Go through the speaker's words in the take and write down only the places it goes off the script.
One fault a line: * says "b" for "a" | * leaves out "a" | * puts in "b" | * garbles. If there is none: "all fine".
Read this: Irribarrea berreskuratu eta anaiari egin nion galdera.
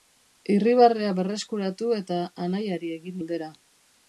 * leaves out "nion"